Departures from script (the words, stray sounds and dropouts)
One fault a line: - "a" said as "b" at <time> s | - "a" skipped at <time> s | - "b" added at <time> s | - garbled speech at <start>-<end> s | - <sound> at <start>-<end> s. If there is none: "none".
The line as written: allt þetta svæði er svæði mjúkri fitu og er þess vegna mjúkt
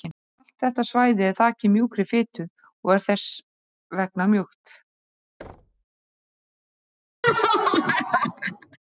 - "svæði" said as "þakið" at 1.4 s
- thud at 5.4-5.8 s
- laugh at 7.2-8.8 s